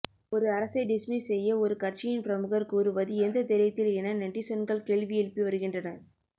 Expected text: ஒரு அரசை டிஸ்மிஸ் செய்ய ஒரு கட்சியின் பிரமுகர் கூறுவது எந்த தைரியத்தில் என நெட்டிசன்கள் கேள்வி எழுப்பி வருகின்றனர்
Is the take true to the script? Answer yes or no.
yes